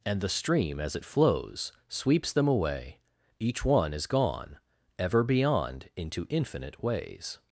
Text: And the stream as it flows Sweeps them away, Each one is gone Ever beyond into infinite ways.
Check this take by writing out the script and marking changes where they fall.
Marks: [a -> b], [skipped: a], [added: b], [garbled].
And the stream as it flows Sweeps them away, Each one is gone Ever beyond into infinite ways.